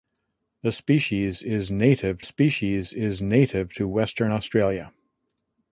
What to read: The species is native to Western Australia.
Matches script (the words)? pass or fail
fail